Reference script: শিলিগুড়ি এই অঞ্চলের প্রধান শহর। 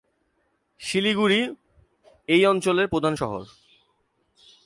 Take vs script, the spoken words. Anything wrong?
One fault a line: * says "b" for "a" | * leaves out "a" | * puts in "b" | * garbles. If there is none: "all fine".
all fine